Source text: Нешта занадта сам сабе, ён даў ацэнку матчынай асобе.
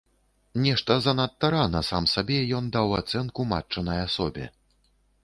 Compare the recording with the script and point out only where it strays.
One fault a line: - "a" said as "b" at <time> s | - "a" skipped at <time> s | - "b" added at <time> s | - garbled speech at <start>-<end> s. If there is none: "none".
- "рана" added at 1.5 s